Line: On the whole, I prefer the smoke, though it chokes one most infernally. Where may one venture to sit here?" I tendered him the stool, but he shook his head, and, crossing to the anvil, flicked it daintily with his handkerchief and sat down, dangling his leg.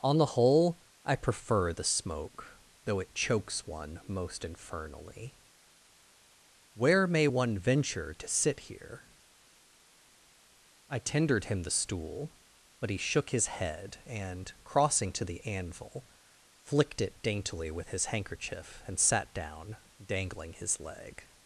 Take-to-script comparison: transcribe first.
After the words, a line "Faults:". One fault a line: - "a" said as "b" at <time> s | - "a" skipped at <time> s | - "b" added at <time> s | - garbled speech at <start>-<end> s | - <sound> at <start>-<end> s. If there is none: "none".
On the whole, I prefer the smoke, though it chokes one most infernally. Where may one venture to sit here?" I tendered him the stool, but he shook his head, and, crossing to the anvil, flicked it daintily with his handkerchief and sat down, dangling his leg.
Faults:
none